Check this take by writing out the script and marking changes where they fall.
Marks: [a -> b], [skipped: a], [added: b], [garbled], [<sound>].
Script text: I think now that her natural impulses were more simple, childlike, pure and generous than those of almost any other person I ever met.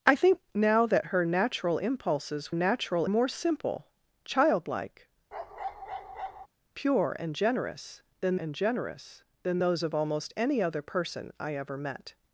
I think now that her natural impulses [were -> natural] more simple, childlike, [bark] pure and generous than [added: and generous than] those of almost any other person I ever met.